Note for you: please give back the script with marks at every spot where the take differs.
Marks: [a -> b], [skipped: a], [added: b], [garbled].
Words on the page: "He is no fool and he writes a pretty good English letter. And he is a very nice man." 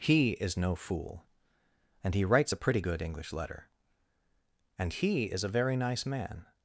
"He is no fool and he writes a pretty good English letter. And he is a very nice man."